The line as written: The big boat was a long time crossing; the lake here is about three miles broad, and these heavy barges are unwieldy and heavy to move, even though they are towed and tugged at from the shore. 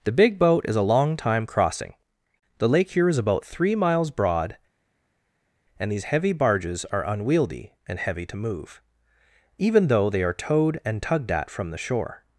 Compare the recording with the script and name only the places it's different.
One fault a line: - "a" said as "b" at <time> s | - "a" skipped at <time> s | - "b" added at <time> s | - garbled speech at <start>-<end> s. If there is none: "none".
- "was" said as "is" at 0.7 s